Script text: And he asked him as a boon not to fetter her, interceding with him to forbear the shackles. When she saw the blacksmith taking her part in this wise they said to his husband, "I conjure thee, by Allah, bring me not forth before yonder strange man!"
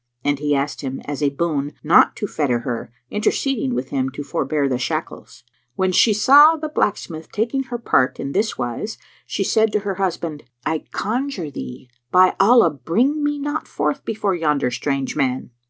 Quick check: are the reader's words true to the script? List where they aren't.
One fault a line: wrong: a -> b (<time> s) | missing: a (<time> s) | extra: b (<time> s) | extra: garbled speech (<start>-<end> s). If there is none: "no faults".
wrong: they -> she (9.3 s)
wrong: his -> her (9.8 s)